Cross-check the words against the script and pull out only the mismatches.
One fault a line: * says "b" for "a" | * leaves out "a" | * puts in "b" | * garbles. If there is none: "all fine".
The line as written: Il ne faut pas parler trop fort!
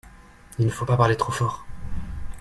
all fine